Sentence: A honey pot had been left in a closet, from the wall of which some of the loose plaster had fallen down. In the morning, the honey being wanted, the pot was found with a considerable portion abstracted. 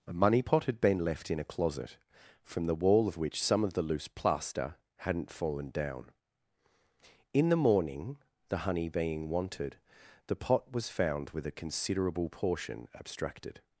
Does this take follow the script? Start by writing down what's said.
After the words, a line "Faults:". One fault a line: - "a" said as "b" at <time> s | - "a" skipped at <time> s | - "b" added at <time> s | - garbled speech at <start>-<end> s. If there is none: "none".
A money pot had been left in a closet, from the wall of which some of the loose plaster hadn't fallen down. In the morning, the honey being wanted, the pot was found with a considerable portion abstracted.
Faults:
- "honey" said as "money" at 0.1 s
- "had" said as "hadn't" at 5.0 s